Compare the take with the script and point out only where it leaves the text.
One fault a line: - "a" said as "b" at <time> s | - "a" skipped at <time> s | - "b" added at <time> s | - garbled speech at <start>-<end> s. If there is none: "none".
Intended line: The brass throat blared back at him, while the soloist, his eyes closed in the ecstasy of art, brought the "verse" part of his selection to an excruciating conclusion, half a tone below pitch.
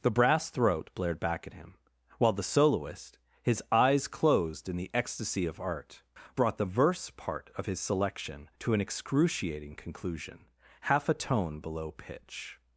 none